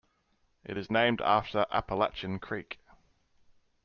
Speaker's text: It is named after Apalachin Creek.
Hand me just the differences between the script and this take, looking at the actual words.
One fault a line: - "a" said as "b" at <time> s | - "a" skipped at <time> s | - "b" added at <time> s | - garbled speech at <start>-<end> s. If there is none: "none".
none